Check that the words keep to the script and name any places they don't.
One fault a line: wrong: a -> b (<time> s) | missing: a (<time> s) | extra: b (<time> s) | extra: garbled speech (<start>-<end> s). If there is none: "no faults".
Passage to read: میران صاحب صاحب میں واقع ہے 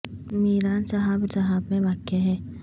no faults